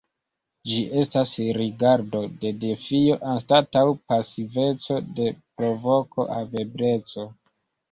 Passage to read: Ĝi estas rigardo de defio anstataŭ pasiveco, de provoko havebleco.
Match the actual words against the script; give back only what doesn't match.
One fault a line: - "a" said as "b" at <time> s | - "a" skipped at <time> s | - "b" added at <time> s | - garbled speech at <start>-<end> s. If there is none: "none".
none